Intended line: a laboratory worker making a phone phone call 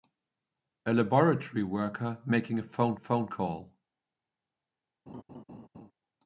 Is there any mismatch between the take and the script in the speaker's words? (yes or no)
no